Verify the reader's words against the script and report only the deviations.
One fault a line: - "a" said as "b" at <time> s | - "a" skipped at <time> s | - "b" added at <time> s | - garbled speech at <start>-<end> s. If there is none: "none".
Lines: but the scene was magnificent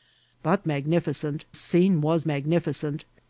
- "the" said as "magnificent" at 0.7 s